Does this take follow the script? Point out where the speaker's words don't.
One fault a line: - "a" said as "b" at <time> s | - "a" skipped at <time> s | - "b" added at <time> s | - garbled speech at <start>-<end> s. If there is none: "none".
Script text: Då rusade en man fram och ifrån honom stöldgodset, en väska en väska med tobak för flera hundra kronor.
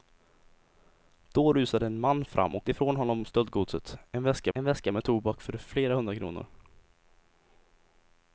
none